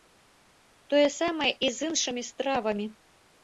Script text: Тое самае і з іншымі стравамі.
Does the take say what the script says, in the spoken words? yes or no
yes